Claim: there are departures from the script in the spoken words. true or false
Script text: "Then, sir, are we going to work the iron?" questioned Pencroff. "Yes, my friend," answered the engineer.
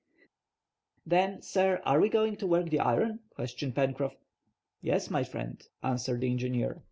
false